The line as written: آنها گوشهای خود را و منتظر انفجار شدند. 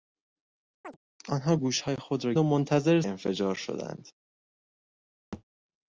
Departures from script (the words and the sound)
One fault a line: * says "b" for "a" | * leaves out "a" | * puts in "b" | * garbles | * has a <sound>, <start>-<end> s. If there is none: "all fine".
* has a chirp, 0.8-1.0 s
* has a thud, 5.3-5.4 s